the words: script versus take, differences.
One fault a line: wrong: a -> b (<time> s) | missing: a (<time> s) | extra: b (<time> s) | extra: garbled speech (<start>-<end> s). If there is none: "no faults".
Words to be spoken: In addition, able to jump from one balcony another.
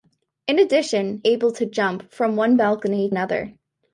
no faults